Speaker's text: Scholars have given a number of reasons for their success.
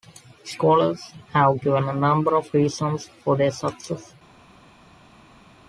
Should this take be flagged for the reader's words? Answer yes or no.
no